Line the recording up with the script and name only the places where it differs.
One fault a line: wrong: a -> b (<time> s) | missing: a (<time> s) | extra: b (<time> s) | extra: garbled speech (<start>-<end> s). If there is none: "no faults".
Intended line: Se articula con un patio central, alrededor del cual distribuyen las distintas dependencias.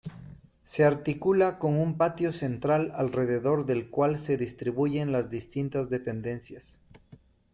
extra: se (4.2 s)